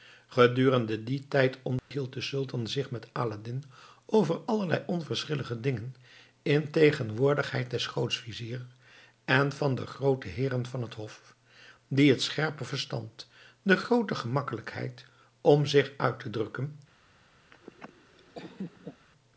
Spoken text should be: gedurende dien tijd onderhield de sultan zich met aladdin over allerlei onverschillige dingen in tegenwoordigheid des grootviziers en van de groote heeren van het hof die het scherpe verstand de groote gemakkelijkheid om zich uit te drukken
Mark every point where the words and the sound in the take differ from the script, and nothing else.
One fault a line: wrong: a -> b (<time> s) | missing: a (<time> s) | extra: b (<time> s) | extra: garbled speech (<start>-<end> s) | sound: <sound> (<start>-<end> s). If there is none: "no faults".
sound: dropout (1.8-1.9 s)
sound: laugh (17.5-19.1 s)